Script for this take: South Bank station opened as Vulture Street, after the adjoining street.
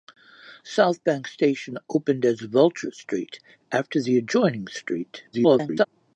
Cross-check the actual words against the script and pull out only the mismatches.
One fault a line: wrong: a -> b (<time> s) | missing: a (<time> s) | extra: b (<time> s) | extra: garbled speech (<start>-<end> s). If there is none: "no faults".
extra: garbled speech (5.3-5.9 s)